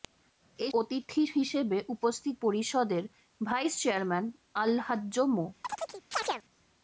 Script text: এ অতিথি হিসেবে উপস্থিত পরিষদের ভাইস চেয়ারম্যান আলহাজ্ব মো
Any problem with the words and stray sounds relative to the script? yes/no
yes